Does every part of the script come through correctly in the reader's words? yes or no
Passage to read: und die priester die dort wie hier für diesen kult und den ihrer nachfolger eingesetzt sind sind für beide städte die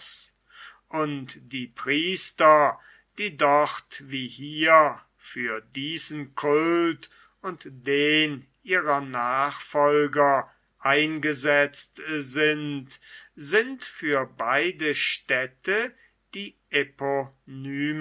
yes